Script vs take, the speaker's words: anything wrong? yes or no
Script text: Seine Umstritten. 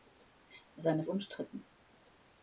no